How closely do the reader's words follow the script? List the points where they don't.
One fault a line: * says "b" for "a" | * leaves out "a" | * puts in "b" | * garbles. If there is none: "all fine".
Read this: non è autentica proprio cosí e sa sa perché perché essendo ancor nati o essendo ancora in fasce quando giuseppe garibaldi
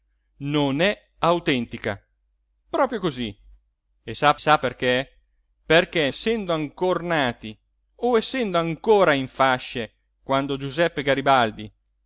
all fine